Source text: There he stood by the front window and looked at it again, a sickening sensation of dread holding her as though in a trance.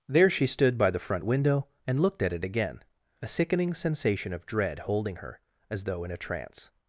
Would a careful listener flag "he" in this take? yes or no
yes